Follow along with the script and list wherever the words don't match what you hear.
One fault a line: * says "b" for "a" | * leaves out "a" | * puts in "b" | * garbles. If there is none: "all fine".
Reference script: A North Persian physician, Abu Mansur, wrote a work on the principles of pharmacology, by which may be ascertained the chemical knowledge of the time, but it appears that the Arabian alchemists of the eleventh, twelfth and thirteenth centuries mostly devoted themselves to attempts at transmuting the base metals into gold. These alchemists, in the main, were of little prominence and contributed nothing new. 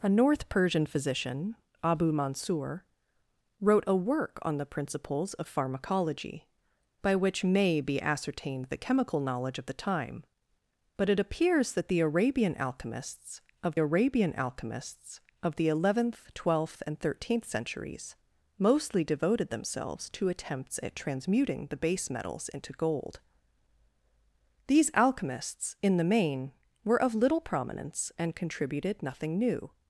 * puts in "Arabian alchemists of"